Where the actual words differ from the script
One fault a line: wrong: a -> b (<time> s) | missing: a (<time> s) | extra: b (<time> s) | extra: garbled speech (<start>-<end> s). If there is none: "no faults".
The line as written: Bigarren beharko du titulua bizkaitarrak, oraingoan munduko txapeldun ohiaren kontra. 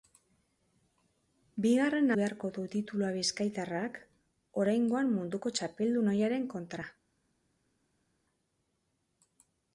no faults